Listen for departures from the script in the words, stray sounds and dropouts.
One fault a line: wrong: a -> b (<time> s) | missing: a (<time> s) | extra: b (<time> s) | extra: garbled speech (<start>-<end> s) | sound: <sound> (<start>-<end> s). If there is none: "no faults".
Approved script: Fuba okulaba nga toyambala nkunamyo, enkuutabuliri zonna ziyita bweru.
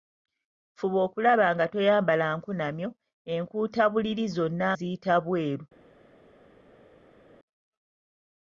no faults